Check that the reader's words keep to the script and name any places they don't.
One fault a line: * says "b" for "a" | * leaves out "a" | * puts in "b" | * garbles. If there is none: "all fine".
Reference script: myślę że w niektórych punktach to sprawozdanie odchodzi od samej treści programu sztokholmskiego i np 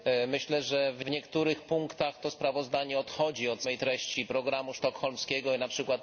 * puts in "w"